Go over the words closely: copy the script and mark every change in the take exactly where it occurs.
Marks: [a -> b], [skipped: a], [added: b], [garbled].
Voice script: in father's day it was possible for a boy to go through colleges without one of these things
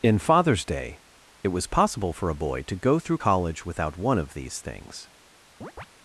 in father's day it was possible for a boy to go through [colleges -> college] without one of these things